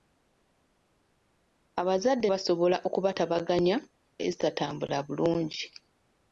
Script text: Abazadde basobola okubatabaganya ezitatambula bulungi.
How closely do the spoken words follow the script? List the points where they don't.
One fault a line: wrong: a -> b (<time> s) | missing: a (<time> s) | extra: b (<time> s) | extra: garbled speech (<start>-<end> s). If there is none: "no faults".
no faults